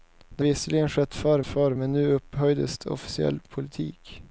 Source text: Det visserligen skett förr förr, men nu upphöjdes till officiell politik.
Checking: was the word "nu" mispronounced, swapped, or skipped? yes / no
no